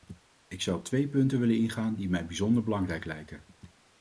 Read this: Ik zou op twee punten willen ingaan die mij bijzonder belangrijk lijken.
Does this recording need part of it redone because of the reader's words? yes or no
no